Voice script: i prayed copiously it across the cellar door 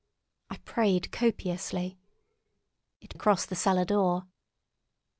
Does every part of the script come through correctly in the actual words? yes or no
yes